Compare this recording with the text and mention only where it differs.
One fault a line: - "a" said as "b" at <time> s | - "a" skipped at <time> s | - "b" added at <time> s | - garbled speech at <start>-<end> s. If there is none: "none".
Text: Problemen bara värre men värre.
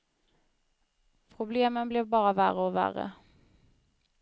- "blev" added at 1.9 s
- "men" said as "och" at 2.6 s